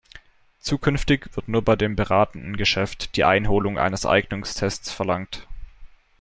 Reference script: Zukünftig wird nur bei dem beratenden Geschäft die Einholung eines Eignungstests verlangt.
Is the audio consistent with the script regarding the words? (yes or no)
yes